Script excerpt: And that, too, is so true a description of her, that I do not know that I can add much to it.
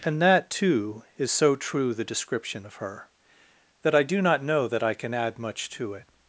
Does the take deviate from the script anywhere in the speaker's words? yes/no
yes